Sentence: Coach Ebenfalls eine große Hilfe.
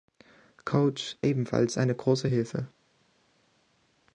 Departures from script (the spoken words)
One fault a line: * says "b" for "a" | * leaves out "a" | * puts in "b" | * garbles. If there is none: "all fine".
all fine